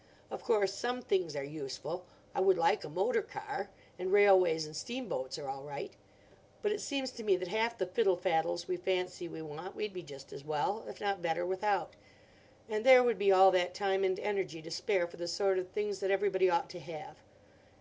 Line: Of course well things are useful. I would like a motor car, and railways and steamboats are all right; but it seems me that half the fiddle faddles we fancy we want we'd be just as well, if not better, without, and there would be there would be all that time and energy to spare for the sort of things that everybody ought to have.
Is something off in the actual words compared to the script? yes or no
yes